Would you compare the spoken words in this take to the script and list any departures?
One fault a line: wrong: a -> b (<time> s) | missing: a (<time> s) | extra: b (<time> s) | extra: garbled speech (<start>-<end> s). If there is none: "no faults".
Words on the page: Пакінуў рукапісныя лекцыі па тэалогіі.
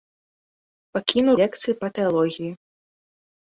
missing: рукапісныя (1.4 s)